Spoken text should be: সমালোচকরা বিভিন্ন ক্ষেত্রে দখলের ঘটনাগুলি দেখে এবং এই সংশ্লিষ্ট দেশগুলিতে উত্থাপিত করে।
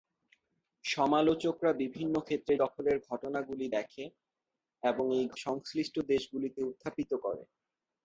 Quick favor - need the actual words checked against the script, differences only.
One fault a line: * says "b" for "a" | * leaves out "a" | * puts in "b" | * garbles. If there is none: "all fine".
all fine